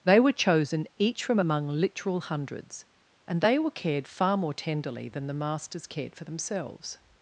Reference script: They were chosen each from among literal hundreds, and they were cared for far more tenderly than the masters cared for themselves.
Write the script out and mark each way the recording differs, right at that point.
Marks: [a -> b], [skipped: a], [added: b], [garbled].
They were chosen each from among literal hundreds, and they were cared [skipped: for] far more tenderly than the masters cared for themselves.